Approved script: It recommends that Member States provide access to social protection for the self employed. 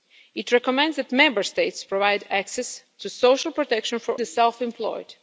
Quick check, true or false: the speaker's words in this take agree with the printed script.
true